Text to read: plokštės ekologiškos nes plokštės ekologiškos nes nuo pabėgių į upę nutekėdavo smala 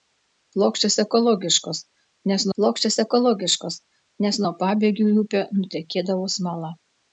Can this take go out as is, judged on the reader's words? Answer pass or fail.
pass